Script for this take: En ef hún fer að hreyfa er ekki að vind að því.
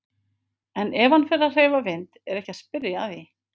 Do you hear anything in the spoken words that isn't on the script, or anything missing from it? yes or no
yes